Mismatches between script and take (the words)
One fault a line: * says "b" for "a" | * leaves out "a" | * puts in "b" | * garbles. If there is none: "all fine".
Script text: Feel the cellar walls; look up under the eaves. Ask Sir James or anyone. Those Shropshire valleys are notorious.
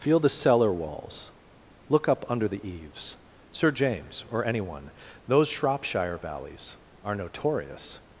* leaves out "Ask"